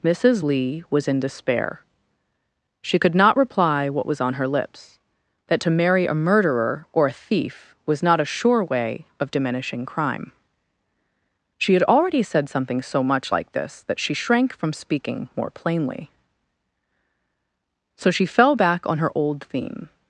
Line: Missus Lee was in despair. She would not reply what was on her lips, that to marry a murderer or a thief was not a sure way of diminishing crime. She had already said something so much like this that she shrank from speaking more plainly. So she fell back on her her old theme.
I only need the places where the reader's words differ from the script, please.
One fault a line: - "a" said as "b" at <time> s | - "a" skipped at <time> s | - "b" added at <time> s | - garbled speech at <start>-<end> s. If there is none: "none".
- "would" said as "could" at 3.0 s
- "her" skipped at 19.1 s